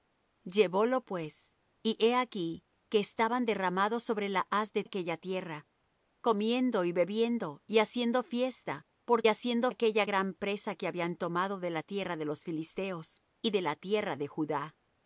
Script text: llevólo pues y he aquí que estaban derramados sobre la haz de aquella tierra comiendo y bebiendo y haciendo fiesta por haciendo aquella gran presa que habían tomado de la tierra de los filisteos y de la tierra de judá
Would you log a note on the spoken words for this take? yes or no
no